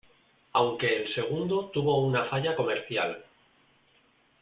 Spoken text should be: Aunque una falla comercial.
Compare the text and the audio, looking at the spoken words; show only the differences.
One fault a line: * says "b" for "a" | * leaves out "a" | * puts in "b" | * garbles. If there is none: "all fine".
* puts in "el segundo tuvo"